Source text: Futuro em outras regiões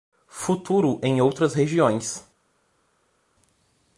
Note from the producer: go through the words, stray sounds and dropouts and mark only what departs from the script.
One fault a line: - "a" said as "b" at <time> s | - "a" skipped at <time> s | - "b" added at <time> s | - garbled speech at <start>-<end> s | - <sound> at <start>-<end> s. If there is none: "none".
none